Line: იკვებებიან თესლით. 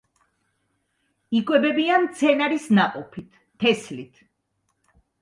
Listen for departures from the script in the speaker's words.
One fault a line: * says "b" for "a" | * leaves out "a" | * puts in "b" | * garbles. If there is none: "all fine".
* puts in "მცენარის ნაყოფით"